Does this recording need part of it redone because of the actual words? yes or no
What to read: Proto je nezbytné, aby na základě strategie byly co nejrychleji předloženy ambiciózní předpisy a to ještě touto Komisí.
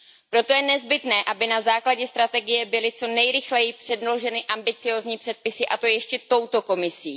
no